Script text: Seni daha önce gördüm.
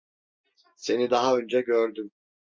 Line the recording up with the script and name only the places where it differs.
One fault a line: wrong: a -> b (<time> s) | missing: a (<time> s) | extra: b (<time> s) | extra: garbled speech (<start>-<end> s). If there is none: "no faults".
no faults